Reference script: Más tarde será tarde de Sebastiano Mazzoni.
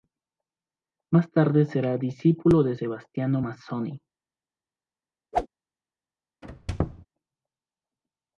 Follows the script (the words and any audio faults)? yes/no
no